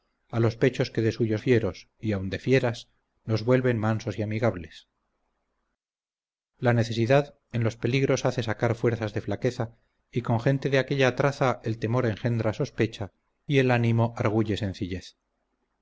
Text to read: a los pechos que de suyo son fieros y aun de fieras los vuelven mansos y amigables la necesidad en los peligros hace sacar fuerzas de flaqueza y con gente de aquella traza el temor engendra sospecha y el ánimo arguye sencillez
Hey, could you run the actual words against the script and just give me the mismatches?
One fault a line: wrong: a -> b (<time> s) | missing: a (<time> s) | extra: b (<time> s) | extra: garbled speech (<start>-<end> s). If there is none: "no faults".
missing: son (1.4 s)